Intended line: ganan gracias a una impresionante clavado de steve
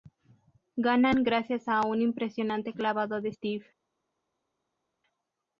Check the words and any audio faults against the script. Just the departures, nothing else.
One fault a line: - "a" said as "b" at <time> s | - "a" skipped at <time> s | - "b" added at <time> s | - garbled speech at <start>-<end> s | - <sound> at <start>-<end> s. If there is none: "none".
- "una" said as "un" at 1.9 s